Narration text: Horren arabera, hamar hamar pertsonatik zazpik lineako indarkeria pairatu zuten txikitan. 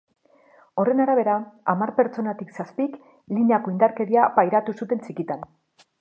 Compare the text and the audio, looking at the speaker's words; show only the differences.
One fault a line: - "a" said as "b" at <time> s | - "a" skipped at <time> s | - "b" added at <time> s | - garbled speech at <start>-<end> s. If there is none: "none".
- "hamar" skipped at 1.9 s